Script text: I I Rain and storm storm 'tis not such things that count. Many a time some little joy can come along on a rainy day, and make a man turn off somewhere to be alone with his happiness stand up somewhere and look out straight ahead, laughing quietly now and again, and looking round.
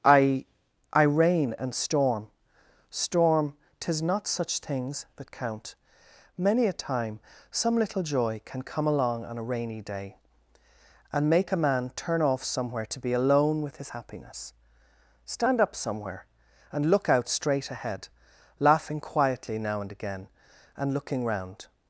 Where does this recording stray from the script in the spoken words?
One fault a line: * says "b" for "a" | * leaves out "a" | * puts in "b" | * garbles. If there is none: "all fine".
all fine